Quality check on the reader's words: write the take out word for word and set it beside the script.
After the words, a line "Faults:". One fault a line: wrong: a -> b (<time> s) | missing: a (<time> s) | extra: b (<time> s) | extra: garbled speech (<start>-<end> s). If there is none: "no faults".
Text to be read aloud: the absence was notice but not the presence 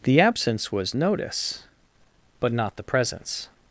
the absence was notice but not the presence
Faults:
no faults